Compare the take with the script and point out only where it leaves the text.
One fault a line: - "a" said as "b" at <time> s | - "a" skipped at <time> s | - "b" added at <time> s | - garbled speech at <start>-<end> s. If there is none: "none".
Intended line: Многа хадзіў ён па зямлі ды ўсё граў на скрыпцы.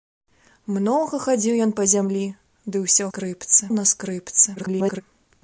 - "граў" said as "скрыпцы" at 3.1 s
- garbled speech at 4.6-5.0 s